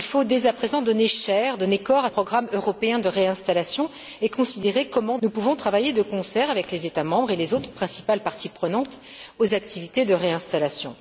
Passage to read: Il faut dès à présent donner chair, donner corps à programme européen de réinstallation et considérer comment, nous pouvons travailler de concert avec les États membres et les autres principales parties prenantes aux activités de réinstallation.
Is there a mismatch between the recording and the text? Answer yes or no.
no